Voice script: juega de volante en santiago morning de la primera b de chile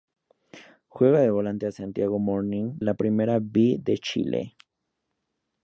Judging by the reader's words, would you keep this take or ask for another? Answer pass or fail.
fail